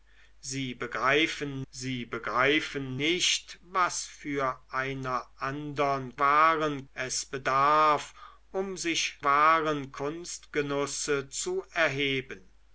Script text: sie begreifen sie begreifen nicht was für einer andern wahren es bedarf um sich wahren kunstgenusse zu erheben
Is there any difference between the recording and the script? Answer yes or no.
no